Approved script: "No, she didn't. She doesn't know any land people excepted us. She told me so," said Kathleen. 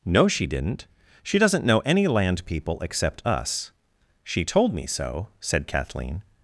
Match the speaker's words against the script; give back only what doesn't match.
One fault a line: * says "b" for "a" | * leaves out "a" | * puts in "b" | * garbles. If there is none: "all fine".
* says "except" for "excepted"